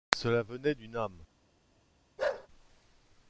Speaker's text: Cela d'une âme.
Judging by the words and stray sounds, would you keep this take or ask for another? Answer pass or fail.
fail